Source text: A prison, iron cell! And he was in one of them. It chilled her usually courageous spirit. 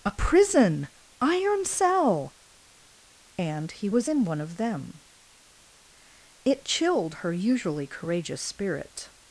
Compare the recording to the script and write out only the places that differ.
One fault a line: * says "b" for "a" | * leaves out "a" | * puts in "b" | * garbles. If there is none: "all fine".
all fine